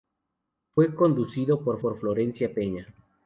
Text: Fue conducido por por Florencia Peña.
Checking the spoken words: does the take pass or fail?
pass